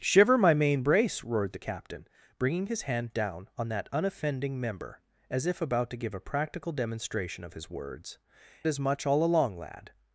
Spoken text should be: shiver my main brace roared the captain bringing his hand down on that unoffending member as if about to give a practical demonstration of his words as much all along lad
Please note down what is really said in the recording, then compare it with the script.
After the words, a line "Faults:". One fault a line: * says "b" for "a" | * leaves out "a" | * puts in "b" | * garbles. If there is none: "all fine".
shiver my main brace roared the captain bringing his hand down on that unoffending member as if about to give a practical demonstration of his words as much all along lad
Faults:
all fine